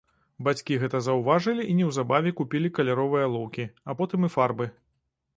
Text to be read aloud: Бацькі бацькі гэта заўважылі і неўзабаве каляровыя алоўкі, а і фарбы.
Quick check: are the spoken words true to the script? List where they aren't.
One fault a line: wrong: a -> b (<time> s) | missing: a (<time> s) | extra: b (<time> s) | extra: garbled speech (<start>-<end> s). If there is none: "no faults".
missing: бацькі (0.8 s)
extra: купілі (2.4 s)
extra: потым (4.0 s)